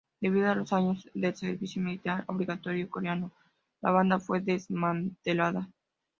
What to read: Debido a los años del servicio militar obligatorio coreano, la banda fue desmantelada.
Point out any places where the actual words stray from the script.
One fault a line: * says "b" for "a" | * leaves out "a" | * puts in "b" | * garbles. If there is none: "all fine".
all fine